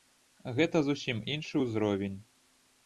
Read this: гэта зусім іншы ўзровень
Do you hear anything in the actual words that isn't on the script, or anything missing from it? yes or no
no